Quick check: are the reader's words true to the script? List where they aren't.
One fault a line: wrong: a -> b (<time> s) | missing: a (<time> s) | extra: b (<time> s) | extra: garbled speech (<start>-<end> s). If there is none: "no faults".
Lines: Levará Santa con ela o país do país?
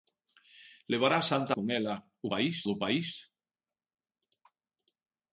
no faults